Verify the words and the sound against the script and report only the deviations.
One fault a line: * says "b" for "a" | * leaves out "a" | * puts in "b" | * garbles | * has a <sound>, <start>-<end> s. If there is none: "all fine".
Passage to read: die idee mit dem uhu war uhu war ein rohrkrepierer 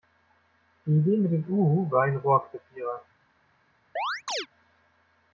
* leaves out "uhu war"
* has a chirp, 4.0-4.5 s